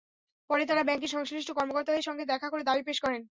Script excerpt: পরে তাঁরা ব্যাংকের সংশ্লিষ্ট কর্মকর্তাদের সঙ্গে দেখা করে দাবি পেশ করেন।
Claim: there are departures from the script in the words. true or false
false